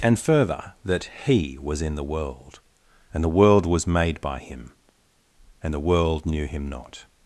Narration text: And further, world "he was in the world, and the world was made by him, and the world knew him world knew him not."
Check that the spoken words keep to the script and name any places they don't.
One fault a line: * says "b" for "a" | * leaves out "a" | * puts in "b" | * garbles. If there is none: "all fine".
* says "that" for "world"
* leaves out "world knew him"